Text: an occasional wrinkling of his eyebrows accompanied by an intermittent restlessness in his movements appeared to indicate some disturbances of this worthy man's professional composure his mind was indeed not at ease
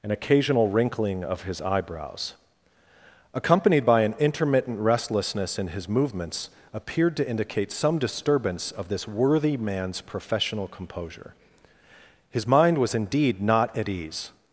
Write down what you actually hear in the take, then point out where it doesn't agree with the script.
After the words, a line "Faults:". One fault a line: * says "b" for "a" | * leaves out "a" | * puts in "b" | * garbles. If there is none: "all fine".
an occasional wrinkling of his eyebrows accompanied by an intermittent restlessness in his movements appeared to indicate some disturbance of this worthy man's professional composure his mind was indeed not at ease
Faults:
* says "disturbance" for "disturbances"